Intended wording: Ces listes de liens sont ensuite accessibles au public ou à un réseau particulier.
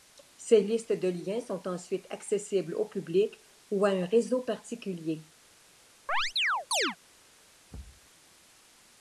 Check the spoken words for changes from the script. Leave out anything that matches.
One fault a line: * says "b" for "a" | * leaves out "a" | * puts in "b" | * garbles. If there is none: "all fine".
all fine